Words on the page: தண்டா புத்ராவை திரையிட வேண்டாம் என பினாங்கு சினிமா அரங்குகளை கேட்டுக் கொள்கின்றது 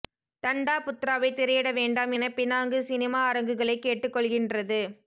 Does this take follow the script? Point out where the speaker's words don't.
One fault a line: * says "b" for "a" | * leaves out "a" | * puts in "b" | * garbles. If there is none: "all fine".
all fine